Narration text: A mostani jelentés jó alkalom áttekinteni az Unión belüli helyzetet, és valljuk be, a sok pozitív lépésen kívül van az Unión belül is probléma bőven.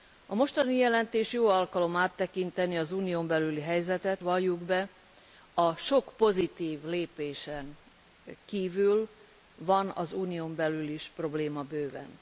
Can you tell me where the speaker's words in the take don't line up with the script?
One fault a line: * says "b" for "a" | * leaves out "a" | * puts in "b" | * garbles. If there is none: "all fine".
* leaves out "és"